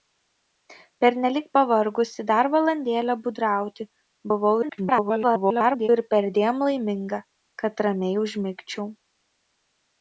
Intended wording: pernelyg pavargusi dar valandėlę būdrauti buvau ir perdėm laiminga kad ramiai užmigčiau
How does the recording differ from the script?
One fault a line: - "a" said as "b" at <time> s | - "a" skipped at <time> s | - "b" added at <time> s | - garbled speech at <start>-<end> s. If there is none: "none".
- garbled speech at 4.6-5.9 s